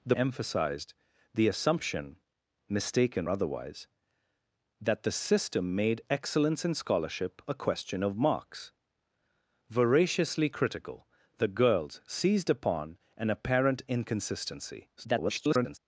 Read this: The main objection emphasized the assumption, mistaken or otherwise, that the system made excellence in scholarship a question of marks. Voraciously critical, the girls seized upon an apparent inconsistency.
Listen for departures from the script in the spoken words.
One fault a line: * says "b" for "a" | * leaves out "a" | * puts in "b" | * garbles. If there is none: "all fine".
* leaves out "main objection"
* leaves out "or"
* garbles